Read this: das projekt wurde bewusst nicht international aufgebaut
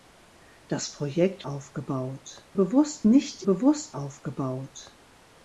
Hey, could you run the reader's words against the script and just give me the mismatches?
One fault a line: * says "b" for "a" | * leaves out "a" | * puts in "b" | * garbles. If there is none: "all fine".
* says "aufgebaut" for "wurde"
* says "bewusst" for "international"